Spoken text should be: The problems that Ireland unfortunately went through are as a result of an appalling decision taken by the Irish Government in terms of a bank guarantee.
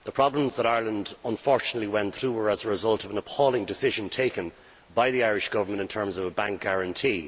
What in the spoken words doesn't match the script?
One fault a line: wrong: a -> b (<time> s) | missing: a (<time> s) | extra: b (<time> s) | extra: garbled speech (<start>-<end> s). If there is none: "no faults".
wrong: are -> were (2.3 s)